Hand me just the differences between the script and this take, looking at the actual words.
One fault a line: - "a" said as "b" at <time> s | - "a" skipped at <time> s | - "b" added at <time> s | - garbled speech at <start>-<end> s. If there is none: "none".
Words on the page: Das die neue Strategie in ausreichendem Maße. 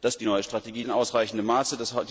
none